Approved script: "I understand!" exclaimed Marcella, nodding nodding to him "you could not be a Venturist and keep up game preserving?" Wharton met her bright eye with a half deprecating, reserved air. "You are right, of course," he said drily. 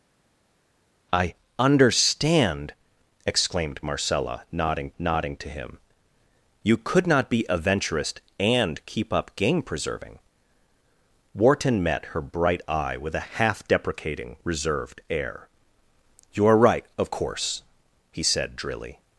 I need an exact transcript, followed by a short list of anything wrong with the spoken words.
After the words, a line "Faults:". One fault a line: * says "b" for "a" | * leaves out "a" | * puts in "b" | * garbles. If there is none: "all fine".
"I understand!" exclaimed Marcella, nodding nodding to him "you could not be a Venturist and keep up game preserving?" Wharton met her bright eye with a half deprecating, reserved air. "You are right, of course," he said drily.
Faults:
all fine